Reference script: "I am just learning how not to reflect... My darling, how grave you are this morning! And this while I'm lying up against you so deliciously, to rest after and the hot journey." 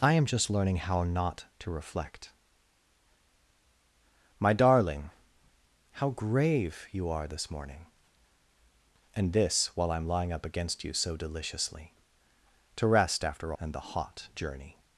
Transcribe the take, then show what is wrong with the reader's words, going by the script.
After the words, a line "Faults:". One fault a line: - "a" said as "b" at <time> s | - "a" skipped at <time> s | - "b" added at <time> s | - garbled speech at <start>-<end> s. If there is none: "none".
"I am just learning how not to reflect... My darling, how grave you are this morning! And this while I'm lying up against you so deliciously, to rest after and the hot journey."
Faults:
none